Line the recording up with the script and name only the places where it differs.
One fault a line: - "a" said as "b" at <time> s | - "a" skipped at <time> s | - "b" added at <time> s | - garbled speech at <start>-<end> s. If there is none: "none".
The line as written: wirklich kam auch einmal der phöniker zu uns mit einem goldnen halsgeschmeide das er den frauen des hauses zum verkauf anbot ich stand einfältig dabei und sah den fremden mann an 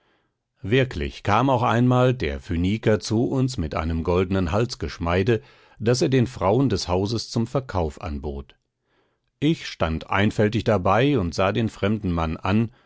none